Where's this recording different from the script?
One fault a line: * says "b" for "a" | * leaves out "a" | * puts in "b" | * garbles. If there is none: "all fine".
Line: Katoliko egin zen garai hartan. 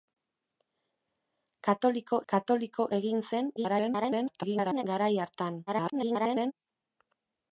* puts in "katoliko"
* garbles
* garbles